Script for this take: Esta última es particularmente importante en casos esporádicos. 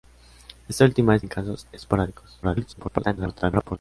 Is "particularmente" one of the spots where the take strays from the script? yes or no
yes